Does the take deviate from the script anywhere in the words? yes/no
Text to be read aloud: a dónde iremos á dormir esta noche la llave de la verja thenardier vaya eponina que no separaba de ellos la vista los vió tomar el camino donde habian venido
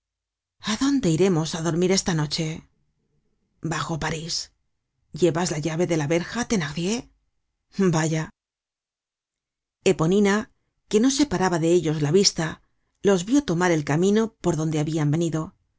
yes